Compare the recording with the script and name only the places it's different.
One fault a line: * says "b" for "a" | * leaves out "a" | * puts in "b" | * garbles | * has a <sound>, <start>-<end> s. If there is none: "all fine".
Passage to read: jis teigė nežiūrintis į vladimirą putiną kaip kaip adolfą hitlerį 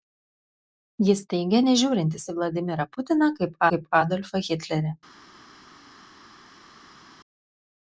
all fine